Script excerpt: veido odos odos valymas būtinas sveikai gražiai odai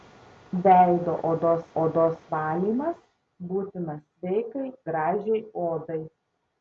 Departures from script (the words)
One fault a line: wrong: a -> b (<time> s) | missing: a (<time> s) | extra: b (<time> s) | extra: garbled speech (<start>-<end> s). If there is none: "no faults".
no faults